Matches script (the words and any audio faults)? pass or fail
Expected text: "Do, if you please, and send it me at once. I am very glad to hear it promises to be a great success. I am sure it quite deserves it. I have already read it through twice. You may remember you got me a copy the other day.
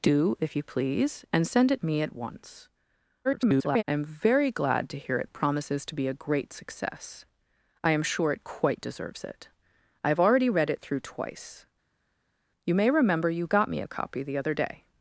fail